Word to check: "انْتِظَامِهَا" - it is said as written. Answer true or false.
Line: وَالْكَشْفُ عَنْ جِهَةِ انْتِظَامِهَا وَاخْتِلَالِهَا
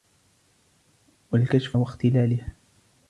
false